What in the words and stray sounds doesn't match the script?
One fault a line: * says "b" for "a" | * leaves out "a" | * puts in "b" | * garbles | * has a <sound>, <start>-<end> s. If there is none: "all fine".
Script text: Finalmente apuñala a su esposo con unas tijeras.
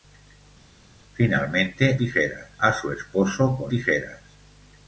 * says "tijeras" for "apuñala"
* leaves out "unas"